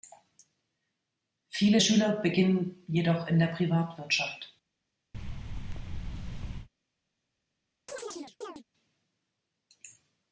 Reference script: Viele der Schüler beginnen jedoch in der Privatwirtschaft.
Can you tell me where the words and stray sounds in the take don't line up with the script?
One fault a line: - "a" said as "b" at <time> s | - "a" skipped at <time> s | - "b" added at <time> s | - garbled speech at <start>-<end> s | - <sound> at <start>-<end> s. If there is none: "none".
- "der" skipped at 1.8 s
- thud at 5.1-6.7 s
- chirp at 7.9-8.6 s